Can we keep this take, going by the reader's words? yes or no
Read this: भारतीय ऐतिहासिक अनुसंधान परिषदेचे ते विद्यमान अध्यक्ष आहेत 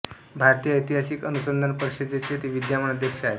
yes